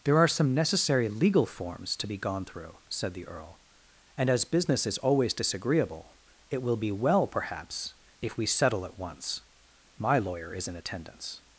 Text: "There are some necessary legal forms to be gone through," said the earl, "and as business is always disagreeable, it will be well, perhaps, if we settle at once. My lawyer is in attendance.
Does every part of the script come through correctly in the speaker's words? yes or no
yes